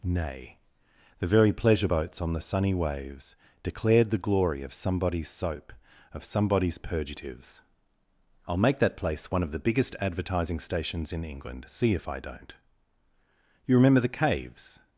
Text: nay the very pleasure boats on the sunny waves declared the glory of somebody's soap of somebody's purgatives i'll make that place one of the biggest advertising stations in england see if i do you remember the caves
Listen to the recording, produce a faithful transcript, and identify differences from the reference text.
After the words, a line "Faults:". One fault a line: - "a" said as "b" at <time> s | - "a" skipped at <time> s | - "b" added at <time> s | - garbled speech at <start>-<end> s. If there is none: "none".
nay the very pleasure boats on the sunny waves declared the glory of somebody's soap of somebody's purgatives i'll make that place one of the biggest advertising stations in england see if i don't you remember the caves
Faults:
- "do" said as "don't" at 12.2 s